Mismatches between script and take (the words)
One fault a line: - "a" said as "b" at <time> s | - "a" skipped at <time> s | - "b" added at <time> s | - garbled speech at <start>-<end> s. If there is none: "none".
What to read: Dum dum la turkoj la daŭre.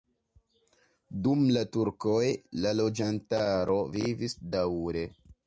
- "dum" skipped at 1.4 s
- "loĝantaro vivis" added at 2.8 s